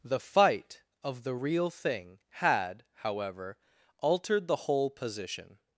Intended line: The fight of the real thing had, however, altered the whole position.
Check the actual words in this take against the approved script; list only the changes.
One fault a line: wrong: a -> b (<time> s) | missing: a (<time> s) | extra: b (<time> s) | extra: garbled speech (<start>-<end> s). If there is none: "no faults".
no faults